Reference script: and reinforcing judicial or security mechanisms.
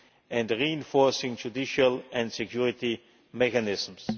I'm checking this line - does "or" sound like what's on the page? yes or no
no